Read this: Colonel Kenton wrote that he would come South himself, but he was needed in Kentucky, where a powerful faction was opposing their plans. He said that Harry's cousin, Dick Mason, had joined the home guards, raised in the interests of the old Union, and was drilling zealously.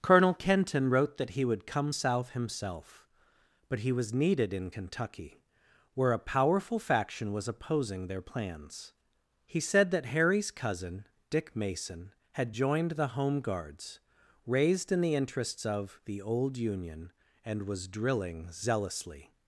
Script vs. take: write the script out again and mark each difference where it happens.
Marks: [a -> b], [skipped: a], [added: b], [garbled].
Colonel Kenton wrote that he would come South himself, but he was needed in Kentucky, where a powerful faction was opposing their plans. He said that Harry's cousin, Dick Mason, had joined the home guards, raised in the interests of the old Union, and was drilling zealously.